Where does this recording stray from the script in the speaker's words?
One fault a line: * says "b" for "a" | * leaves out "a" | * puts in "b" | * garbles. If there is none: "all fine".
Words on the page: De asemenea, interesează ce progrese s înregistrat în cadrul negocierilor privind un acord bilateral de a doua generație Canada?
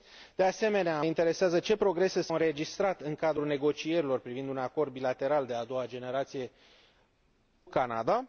all fine